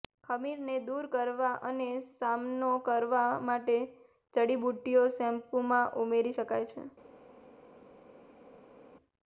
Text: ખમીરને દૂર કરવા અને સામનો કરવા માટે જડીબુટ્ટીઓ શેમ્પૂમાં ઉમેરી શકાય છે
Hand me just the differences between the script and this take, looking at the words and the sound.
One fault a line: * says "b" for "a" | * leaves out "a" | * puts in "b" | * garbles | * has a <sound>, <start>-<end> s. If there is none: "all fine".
all fine